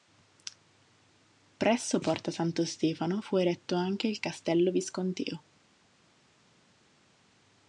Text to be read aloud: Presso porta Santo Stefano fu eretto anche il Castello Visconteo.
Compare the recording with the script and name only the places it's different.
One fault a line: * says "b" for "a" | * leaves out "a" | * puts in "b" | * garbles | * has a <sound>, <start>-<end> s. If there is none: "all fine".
all fine